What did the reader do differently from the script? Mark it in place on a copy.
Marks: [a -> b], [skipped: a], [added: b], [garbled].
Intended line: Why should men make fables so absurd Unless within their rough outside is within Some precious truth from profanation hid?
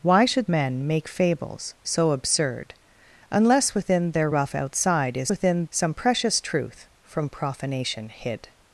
Why should men make fables so absurd Unless within their rough outside is within Some precious truth from profanation hid?